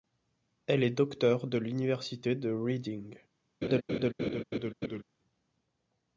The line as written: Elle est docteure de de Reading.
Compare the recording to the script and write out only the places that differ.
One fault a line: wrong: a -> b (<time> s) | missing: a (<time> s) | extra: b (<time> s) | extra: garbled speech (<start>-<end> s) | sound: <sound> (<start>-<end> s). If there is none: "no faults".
extra: l'Université (1.6 s)
sound: laugh (3.6-5.0 s)